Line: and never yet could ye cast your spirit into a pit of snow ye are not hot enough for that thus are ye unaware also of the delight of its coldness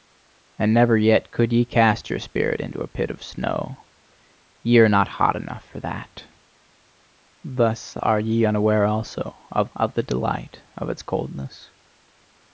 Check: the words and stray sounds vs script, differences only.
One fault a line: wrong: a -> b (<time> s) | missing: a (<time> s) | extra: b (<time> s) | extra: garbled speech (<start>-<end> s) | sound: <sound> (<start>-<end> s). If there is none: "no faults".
extra: of (9.8 s)